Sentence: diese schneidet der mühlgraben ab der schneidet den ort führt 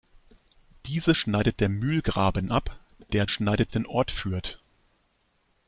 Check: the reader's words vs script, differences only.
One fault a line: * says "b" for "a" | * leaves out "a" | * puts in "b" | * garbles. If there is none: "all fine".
all fine